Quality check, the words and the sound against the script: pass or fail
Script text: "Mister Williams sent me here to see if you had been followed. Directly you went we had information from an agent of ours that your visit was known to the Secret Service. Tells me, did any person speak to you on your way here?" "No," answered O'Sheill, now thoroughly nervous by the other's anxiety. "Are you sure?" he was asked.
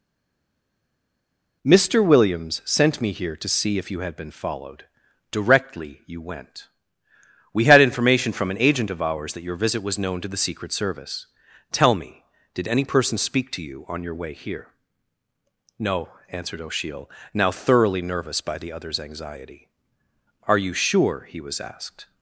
fail